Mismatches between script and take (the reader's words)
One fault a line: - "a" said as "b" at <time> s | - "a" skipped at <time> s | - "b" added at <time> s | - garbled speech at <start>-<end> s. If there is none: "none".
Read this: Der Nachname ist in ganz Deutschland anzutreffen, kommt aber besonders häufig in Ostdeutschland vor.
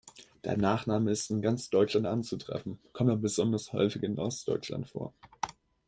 none